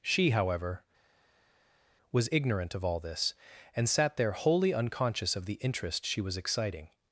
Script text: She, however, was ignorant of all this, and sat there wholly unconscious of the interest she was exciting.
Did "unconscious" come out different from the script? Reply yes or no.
no